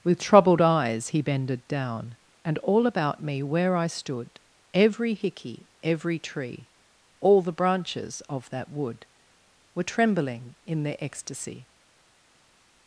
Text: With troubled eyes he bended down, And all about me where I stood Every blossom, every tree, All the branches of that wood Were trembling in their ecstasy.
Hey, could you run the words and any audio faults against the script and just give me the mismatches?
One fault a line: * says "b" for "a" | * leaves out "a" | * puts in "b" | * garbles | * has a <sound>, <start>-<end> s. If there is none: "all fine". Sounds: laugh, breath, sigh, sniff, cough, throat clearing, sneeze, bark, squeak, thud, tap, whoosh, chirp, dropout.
* says "hickey" for "blossom"